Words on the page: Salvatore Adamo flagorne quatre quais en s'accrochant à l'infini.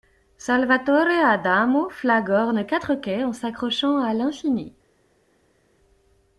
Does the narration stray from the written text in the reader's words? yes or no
no